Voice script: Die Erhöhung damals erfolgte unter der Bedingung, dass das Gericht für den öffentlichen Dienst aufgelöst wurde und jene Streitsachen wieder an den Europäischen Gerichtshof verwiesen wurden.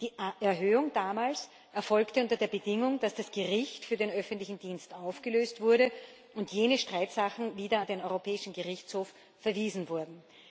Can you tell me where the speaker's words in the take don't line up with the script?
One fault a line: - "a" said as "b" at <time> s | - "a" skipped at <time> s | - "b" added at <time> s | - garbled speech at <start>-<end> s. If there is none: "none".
none